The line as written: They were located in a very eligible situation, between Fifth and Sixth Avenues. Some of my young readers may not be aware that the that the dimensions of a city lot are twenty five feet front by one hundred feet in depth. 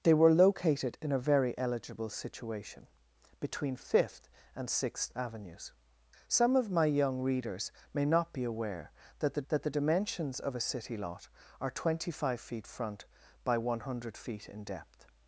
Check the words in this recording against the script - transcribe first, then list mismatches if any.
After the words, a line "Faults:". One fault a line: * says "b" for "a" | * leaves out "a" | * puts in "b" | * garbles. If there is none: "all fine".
They were located in a very eligible situation, between Fifth and Sixth Avenues. Some of my young readers may not be aware that the that the dimensions of a city lot are twenty five feet front by one hundred feet in depth.
Faults:
all fine